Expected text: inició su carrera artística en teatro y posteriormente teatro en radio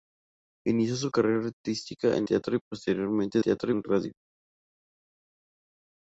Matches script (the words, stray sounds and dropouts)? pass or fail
pass